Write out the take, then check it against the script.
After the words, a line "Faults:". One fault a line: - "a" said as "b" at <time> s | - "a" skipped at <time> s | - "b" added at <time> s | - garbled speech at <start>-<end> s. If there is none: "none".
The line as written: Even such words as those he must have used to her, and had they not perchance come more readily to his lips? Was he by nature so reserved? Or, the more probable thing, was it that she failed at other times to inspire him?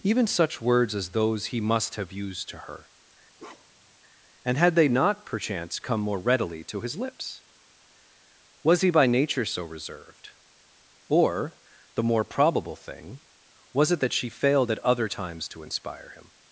Even such words as those he must have used to her, and had they not perchance come more readily to his lips? Was he by nature so reserved? Or, the more probable thing, was it that she failed at other times to inspire him?
Faults:
none